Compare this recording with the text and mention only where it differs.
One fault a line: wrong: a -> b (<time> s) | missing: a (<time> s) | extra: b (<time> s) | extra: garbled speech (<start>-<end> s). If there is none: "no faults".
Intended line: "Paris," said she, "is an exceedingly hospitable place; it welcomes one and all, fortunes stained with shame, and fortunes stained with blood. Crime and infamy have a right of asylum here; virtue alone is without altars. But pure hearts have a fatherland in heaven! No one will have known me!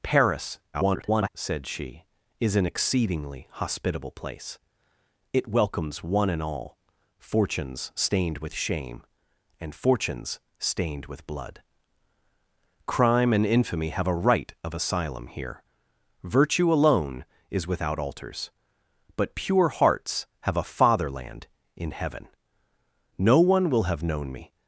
extra: garbled speech (0.7-1.3 s)